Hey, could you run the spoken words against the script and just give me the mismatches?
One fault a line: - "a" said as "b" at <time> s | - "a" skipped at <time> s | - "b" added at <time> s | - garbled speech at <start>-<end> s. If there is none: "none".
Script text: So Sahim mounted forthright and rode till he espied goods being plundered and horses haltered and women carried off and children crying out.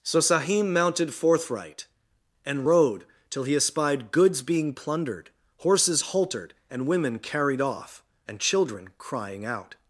- "and" skipped at 5.3 s